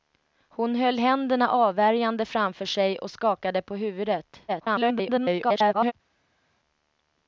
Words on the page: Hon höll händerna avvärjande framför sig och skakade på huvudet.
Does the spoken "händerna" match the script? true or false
true